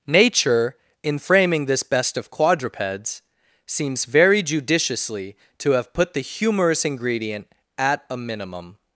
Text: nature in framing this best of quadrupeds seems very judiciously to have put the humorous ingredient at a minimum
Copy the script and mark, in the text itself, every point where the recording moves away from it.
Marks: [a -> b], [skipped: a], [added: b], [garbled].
nature in framing this best of quadrupeds seems very judiciously to have put the humorous ingredient at a minimum